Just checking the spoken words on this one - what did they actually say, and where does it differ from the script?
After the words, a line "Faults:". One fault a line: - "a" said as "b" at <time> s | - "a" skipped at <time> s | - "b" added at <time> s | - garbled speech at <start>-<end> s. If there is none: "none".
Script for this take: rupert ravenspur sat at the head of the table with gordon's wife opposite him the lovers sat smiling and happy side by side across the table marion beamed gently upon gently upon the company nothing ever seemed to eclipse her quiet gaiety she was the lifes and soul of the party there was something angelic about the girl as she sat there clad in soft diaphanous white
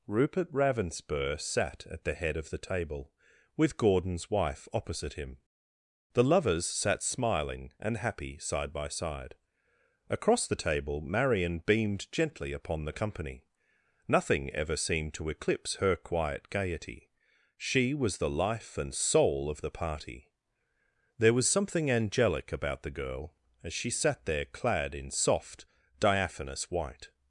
rupert ravenspur sat at the head of the table with gordon's wife opposite him the lovers sat smiling and happy side by side across the table marion beamed gently upon the company nothing ever seemed to eclipse her quiet gaiety she was the life and soul of the party there was something angelic about the girl as she sat there clad in soft diaphanous white
Faults:
- "gently upon" skipped at 12.8 s
- "lifes" said as "life" at 18.3 s